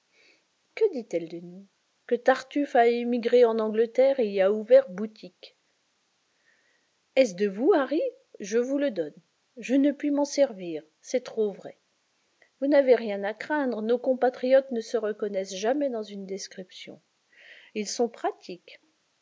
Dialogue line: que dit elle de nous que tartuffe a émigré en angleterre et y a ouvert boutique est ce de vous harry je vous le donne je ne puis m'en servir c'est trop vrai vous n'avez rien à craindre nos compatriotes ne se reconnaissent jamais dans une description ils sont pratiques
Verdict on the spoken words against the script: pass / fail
pass